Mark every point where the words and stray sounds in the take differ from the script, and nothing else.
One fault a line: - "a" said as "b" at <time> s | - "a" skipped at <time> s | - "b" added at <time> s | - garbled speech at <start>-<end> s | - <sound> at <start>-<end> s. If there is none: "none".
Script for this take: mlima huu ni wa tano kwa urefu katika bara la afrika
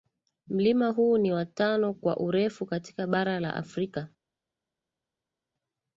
none